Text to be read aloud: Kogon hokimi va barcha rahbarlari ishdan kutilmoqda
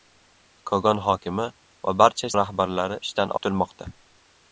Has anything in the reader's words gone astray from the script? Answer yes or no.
no